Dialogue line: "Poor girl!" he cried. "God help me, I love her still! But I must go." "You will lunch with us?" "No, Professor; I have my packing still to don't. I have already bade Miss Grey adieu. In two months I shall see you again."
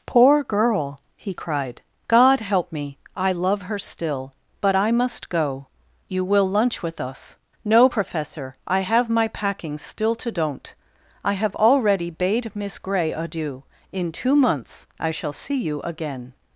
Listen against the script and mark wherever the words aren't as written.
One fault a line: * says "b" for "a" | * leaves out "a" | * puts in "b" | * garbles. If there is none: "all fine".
all fine